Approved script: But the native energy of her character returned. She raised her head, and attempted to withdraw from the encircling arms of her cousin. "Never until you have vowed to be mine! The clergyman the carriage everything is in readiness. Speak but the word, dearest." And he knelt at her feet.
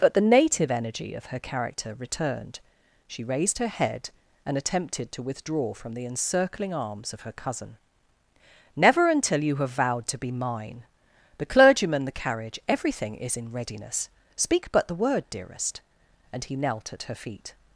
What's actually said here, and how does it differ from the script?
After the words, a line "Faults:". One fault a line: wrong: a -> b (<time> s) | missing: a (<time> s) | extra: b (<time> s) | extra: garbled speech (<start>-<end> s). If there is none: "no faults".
But the native energy of her character returned. She raised her head, and attempted to withdraw from the encircling arms of her cousin. "Never until you have vowed to be mine! The clergyman the carriage everything is in readiness. Speak but the word, dearest." And he knelt at her feet.
Faults:
no faults